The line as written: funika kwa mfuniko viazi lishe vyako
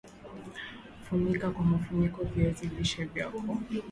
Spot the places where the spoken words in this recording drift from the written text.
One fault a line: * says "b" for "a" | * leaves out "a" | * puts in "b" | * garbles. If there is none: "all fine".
all fine